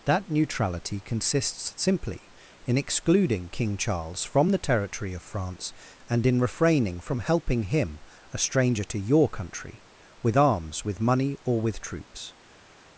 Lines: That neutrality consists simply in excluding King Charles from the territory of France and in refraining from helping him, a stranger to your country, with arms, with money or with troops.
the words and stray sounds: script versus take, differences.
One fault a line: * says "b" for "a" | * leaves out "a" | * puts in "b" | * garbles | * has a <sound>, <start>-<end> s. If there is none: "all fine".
all fine